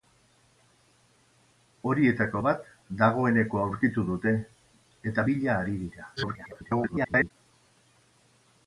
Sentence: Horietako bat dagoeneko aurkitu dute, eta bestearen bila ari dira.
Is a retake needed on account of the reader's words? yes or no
yes